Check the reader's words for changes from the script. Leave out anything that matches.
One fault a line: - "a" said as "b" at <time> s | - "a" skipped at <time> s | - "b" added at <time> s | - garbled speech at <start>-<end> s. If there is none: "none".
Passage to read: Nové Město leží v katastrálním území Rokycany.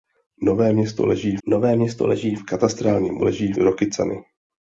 - "nové Město leží" added at 1.5 s
- "území" said as "leží" at 3.2 s